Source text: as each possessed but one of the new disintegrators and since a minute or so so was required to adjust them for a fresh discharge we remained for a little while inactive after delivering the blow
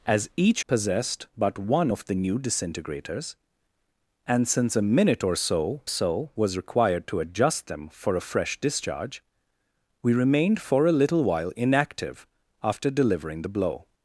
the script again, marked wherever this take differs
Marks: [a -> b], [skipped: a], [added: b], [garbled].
as each possessed but one of the new disintegrators and since a minute or so so was required to adjust them for a fresh discharge we remained for a little while inactive after delivering the blow